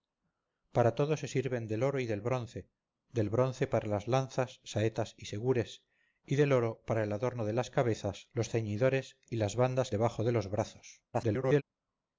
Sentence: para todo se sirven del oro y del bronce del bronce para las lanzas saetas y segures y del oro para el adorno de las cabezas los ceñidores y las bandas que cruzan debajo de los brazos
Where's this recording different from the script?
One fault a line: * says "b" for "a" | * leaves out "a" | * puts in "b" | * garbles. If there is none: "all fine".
* leaves out "que cruzan"
* garbles